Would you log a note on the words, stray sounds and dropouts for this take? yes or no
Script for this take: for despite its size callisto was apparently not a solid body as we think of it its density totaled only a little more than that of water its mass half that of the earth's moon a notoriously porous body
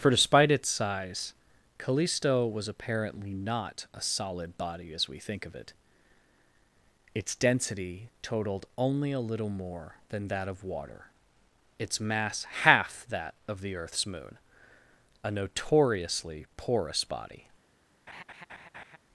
yes